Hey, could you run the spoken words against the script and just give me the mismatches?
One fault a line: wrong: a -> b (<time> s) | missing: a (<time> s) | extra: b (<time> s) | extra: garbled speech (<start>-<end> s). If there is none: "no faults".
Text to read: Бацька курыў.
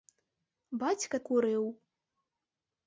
no faults